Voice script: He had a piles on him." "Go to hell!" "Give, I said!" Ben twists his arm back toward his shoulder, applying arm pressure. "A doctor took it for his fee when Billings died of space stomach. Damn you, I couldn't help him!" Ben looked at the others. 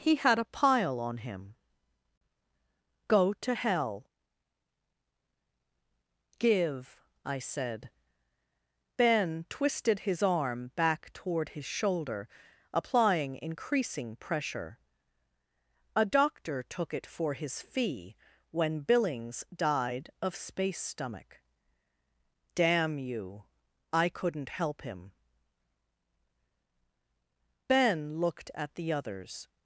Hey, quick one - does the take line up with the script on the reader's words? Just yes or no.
no